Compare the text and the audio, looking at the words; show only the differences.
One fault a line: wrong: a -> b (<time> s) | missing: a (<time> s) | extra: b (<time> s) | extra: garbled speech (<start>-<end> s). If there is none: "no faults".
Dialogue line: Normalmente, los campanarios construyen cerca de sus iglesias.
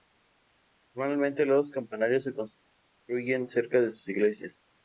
extra: se (2.2 s)